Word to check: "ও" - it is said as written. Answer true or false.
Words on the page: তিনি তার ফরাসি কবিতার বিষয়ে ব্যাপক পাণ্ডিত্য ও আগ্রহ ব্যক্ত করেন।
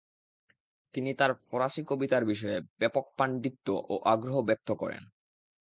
true